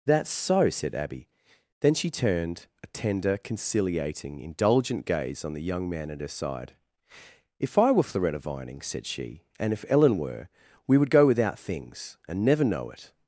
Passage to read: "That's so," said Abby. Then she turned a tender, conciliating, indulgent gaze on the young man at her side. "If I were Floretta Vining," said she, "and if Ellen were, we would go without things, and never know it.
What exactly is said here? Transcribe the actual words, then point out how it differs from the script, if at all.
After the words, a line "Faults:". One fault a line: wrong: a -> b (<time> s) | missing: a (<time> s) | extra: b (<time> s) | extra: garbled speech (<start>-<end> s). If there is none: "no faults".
"That's so," said Abby. Then she turned a tender, conciliating, indulgent gaze on the young man at her side. "If I were Floretta Vining," said she, "and if Ellen were, we would go without things, and never know it.
Faults:
no faults